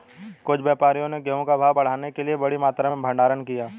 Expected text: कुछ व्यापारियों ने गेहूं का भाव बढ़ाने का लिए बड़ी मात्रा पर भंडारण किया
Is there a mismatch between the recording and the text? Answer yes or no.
yes